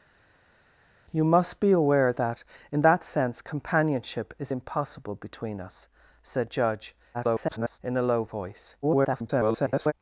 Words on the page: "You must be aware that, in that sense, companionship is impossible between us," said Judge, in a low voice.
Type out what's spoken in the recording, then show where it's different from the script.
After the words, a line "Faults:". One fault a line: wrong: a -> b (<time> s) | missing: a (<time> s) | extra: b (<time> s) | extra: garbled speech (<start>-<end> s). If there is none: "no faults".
"You must be aware that, in that sense, companionship is impossible between us," said Judge, [garbled] in a low voice. [garbled]
Faults:
extra: garbled speech (7.1-7.8 s)
extra: garbled speech (8.8-9.9 s)